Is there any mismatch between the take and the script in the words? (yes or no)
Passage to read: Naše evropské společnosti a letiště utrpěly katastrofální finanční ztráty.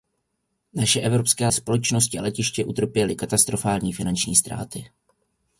no